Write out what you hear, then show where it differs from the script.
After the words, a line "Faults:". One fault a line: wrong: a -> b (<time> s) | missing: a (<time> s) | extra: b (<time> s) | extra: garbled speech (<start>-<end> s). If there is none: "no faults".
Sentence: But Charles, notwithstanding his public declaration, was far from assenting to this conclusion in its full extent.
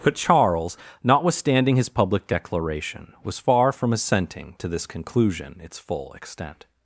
But Charles, notwithstanding his public declaration, was far from assenting to this conclusion its full extent.
Faults:
missing: in (5.6 s)